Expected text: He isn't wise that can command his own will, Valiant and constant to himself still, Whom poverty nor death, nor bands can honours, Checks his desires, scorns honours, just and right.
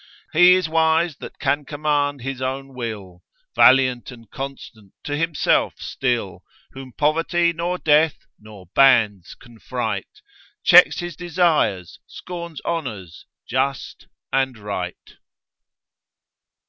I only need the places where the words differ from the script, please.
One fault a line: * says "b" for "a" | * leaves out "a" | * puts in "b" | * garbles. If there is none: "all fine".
* says "is" for "isn't"
* says "fright" for "honours"